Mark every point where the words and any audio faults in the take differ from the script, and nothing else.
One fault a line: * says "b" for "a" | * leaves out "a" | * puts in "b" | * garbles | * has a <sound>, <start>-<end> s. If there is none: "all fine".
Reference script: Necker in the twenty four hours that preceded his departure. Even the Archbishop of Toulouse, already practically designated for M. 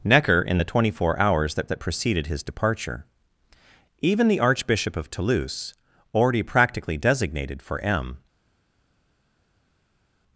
* puts in "that"